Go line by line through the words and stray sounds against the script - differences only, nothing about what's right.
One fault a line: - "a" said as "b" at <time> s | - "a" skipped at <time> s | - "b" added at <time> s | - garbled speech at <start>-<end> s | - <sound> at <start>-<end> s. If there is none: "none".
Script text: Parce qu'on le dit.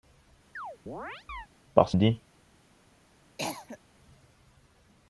- chirp at 0.6-1.5 s
- "qu'on" skipped at 2.0 s
- cough at 3.4-3.8 s